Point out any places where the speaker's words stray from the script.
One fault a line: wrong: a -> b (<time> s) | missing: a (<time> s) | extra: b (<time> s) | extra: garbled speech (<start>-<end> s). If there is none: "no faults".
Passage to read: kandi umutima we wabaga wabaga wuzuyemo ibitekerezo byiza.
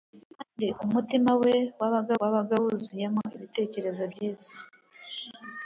no faults